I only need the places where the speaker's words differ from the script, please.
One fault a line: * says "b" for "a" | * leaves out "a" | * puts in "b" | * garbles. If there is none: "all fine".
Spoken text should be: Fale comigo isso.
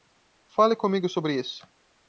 * puts in "sobre"